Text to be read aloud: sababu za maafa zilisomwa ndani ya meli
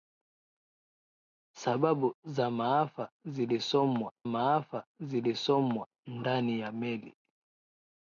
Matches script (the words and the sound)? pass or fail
fail